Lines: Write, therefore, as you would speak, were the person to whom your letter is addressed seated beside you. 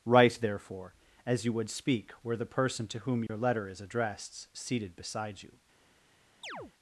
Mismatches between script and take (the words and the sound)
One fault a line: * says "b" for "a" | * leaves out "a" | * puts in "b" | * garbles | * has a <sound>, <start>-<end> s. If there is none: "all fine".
* has a dropout, 3.3-3.3 s
* has a chirp, 6.4-6.7 s